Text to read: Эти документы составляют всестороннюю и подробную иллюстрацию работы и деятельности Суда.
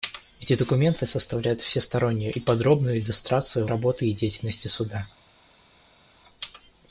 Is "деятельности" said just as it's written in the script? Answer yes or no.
yes